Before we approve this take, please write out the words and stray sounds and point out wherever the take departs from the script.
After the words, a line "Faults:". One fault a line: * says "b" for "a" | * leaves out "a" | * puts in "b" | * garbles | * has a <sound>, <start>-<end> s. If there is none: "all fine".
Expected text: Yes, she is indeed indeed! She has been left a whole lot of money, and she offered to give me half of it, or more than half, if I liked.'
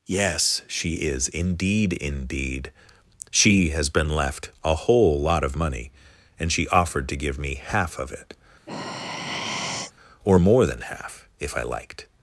Yes, she is indeed indeed! She has been left a whole lot of money, and she offered to give me half of it, or more than half, if I liked.'
Faults:
* has a sigh, 8.7-9.9 s